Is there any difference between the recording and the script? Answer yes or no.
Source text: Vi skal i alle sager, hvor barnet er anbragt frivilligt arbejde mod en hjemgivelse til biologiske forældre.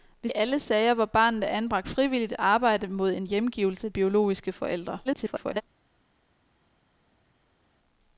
yes